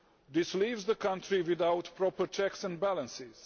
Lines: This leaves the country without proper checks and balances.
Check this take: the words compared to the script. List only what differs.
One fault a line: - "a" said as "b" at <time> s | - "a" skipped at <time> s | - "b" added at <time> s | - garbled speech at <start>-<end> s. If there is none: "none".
none